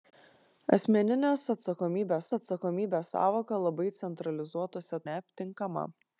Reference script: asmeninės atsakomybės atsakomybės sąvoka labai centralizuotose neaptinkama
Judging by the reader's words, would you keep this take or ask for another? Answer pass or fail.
pass